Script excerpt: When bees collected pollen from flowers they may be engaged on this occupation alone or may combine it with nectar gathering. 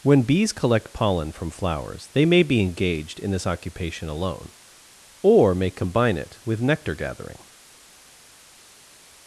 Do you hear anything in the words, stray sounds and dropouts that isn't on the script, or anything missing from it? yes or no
yes